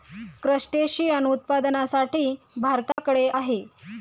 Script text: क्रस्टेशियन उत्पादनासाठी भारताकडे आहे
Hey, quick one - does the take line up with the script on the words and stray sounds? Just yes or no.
no